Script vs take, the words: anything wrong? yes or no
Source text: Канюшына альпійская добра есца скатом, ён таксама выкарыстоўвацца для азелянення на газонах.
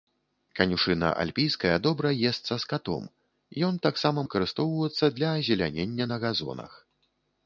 no